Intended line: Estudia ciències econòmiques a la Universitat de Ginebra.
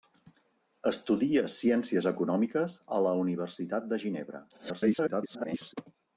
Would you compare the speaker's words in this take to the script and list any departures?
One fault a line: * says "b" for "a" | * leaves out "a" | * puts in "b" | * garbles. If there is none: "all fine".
* garbles